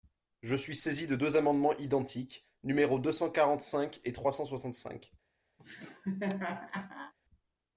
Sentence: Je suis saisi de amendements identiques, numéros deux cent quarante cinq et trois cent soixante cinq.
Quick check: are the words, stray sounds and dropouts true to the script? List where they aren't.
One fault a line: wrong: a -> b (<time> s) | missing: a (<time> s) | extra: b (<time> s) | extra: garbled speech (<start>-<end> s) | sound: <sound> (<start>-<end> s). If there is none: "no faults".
extra: deux (1.1 s)
sound: laugh (5.6-7.1 s)